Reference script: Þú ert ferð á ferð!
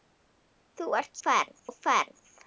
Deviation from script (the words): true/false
false